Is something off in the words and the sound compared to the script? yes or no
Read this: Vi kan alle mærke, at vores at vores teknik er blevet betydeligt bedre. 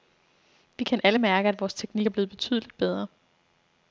yes